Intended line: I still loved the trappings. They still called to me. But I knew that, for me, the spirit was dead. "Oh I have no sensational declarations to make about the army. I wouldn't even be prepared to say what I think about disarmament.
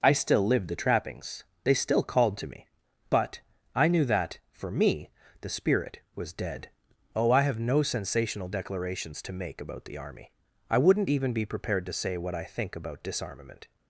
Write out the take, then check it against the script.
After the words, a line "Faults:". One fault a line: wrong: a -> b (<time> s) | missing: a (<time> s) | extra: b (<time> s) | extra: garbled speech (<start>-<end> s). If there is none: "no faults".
I still lived the trappings. They still called to me. But I knew that, for me, the spirit was dead. "Oh I have no sensational declarations to make about the army. I wouldn't even be prepared to say what I think about disarmament.
Faults:
wrong: loved -> lived (0.5 s)